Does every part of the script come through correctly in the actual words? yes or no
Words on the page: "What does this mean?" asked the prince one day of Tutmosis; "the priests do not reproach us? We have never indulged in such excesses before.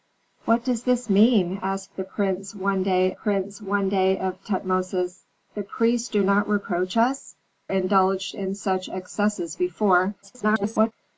no